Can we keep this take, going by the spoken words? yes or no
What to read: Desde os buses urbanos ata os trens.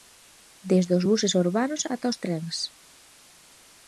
yes